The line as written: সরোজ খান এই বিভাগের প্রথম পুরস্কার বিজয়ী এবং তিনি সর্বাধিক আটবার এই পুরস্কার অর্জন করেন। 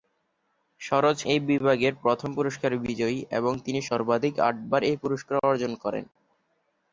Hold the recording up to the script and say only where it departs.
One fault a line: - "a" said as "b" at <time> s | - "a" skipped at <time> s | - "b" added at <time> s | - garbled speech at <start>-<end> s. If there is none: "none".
- "খান" skipped at 1.2 s